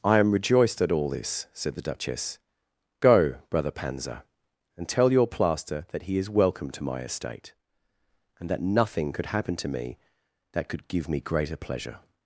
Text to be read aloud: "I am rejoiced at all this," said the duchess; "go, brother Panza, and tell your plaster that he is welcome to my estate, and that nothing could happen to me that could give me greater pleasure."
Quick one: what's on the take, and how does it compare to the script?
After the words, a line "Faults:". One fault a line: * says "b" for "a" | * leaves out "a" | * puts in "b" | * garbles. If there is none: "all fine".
"I am rejoiced at all this," said the duchess; "go, brother Panza, and tell your plaster that he is welcome to my estate, and that nothing could happen to me that could give me greater pleasure."
Faults:
all fine